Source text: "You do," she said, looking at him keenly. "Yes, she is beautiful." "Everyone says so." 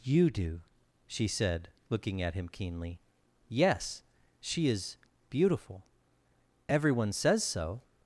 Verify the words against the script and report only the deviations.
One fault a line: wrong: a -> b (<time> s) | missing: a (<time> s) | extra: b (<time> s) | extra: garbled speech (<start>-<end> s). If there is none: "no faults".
no faults